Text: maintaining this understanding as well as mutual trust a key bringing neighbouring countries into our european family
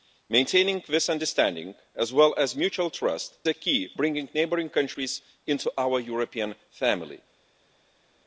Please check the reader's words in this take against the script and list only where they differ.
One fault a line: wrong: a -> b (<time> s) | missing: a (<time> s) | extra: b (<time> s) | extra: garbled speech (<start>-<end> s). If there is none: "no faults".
no faults